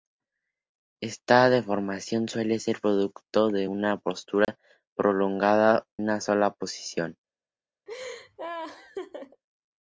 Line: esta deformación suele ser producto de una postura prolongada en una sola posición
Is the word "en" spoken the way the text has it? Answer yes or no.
no